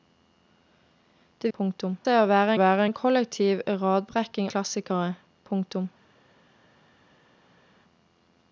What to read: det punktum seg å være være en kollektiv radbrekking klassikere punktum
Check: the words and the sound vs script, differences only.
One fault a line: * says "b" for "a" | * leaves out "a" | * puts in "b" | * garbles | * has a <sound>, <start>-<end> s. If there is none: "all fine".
all fine